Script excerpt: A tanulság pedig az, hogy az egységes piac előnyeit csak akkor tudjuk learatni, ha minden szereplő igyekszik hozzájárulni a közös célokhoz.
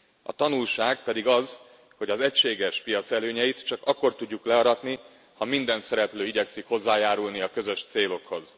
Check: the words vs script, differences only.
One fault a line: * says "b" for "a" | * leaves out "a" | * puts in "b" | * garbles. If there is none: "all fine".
all fine